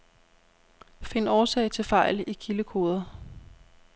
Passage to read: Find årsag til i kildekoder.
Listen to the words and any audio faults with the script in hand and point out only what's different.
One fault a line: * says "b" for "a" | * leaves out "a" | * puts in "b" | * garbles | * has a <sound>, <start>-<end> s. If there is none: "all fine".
* puts in "fejl"